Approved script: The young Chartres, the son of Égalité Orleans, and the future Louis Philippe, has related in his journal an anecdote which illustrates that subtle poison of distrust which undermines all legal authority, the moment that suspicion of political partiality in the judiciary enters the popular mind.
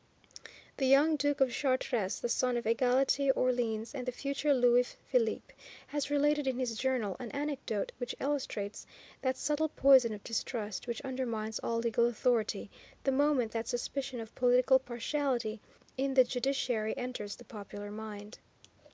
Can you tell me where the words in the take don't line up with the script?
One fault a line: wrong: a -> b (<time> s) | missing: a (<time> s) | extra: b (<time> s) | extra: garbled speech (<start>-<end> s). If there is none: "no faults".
extra: Duke of (1.1 s)